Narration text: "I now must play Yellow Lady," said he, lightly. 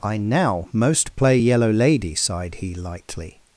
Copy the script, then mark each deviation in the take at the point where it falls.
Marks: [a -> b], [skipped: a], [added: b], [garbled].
"I now [must -> most] play Yellow Lady," [said -> sighed] he, lightly.